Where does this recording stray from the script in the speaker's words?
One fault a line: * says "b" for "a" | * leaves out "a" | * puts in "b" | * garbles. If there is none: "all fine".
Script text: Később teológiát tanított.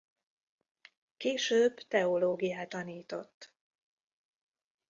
all fine